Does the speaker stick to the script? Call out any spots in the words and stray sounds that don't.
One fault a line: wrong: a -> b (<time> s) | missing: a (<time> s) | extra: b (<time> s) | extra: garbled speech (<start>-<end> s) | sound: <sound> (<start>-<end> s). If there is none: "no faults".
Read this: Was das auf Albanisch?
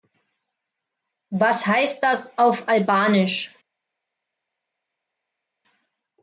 extra: heißt (1.7 s)